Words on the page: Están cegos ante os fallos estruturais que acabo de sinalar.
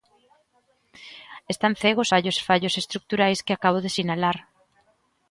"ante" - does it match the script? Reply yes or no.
no